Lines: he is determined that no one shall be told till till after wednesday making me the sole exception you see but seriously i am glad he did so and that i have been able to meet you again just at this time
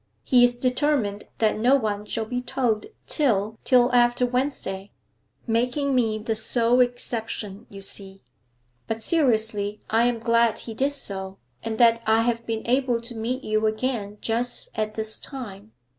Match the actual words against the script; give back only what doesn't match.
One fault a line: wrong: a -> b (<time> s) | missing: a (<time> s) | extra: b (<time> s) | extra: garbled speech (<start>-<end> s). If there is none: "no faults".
no faults